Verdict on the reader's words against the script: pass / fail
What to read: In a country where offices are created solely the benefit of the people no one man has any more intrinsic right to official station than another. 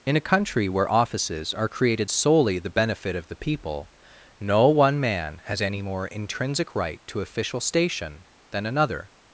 pass